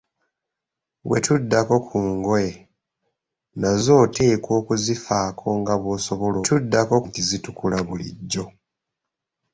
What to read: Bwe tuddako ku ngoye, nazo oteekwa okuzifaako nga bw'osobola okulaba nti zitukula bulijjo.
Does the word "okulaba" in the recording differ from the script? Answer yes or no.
yes